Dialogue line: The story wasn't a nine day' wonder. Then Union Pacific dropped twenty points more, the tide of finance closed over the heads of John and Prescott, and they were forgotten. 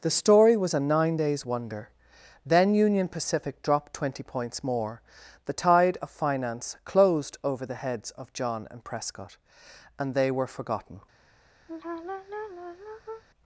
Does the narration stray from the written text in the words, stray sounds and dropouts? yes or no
yes